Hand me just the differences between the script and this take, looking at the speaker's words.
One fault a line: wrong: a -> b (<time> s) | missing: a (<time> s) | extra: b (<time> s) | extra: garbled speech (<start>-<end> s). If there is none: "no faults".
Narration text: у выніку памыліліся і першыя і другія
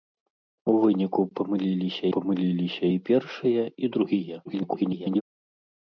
extra: памыліліся (2.2 s)
extra: garbled speech (4.5-5.2 s)